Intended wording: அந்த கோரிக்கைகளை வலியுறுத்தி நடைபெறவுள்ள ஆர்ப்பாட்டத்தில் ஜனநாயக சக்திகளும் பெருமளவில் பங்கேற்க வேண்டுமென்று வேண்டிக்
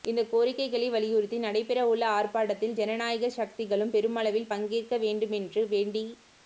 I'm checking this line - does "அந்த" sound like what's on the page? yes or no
no